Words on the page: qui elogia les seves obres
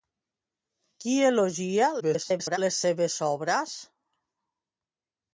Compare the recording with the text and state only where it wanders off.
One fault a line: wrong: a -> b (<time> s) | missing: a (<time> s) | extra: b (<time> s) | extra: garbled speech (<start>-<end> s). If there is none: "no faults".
extra: garbled speech (2.0-2.6 s)